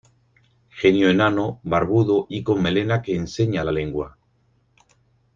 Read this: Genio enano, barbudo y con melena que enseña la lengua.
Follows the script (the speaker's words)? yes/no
yes